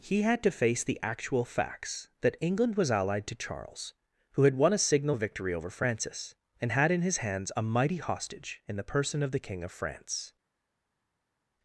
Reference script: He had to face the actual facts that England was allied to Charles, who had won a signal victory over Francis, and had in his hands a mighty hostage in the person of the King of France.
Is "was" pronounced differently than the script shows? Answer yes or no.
no